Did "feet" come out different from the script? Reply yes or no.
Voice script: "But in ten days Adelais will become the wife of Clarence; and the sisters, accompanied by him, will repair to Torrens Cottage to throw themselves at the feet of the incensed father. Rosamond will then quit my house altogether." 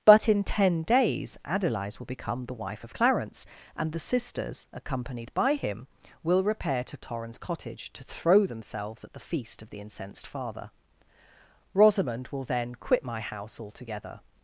yes